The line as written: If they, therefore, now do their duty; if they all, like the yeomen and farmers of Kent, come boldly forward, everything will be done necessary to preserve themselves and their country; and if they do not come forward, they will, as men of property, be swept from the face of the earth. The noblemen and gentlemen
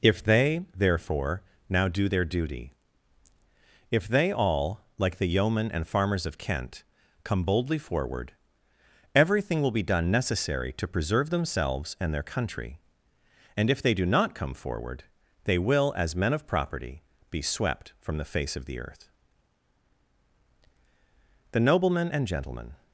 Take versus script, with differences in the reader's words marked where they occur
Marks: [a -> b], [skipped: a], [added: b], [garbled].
If they, therefore, now do their duty; if they all, like the yeomen and farmers of Kent, come boldly forward, everything will be done necessary to preserve themselves and their country; and if they do not come forward, they will, as men of property, be swept from the face of the earth. The noblemen and gentlemen